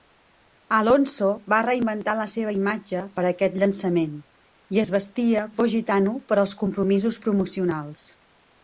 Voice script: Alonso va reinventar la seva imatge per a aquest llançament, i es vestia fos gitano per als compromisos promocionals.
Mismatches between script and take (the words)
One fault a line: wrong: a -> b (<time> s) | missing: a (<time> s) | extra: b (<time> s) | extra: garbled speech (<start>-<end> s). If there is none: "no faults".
no faults